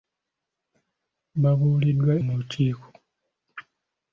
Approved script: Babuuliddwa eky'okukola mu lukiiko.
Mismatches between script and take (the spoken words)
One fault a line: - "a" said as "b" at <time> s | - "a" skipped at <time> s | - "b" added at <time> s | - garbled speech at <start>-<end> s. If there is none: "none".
- "eky'okukola" skipped at 2.1 s